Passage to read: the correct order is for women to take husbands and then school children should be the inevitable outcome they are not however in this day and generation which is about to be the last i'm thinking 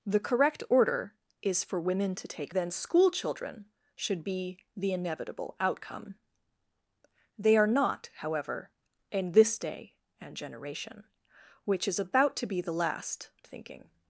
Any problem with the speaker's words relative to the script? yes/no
yes